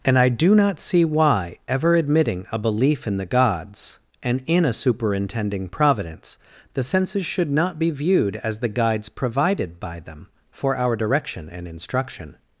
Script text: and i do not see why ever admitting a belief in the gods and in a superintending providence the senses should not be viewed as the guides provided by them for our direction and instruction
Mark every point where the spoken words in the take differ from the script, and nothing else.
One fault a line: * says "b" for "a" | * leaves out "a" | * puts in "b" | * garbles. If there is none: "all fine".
all fine